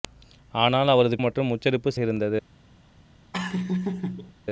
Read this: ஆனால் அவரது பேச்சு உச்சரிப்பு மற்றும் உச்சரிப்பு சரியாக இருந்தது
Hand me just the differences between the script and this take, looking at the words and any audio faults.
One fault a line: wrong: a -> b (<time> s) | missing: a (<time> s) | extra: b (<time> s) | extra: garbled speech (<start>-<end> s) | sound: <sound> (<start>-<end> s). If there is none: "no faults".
missing: பேச்சு உச்சரிப்பு (1.2 s)
missing: சரியாக (1.9 s)
sound: laugh (3.3-4.3 s)